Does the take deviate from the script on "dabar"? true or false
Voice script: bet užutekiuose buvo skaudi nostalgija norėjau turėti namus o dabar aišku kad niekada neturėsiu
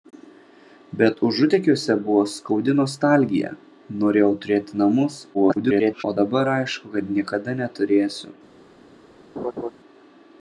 false